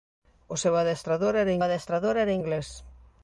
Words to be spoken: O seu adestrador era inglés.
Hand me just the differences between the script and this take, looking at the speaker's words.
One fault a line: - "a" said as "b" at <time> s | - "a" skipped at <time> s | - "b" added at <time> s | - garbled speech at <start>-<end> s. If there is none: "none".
- "adestrador era" added at 1.6 s